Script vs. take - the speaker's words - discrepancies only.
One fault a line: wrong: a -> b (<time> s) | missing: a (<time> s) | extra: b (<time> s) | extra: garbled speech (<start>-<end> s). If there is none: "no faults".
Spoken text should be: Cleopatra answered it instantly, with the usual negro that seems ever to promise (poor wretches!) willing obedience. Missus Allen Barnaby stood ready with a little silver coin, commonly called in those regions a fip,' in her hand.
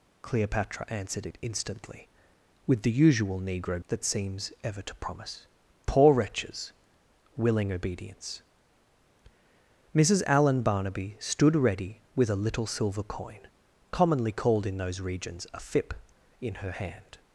no faults